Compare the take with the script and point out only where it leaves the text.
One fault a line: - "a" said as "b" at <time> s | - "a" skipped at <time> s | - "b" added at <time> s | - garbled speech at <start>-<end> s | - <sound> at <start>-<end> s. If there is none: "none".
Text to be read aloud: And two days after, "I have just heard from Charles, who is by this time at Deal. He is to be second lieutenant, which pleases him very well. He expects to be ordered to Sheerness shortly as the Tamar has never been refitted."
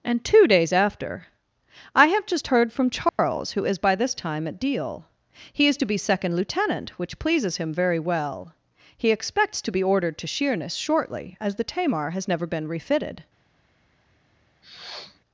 - dropout at 3.1-3.2 s
- sniff at 14.6-15.2 s